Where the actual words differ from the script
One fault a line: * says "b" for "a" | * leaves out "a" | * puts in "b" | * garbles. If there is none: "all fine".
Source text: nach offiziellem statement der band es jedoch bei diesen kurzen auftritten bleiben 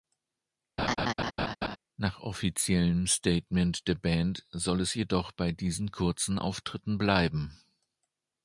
* puts in "soll"